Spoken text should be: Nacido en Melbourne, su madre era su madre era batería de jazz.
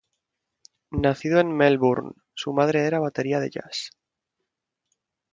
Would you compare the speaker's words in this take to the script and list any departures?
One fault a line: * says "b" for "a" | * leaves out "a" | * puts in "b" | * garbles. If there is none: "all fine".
* leaves out "su madre era"